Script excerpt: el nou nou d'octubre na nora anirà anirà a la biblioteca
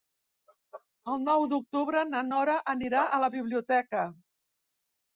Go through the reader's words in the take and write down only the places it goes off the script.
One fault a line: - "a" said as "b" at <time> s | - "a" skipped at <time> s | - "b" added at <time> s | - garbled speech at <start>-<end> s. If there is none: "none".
- "nou" skipped at 1.4 s
- "anirà" skipped at 3.0 s